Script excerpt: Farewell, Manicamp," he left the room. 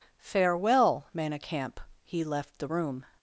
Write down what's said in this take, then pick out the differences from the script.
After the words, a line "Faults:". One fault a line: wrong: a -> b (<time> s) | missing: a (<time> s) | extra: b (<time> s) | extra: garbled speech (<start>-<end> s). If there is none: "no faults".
Farewell, Manicamp," he left the room.
Faults:
no faults